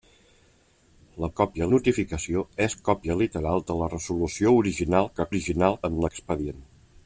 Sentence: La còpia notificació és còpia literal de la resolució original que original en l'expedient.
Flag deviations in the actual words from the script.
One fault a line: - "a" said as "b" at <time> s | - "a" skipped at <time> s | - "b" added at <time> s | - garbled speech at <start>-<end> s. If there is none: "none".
none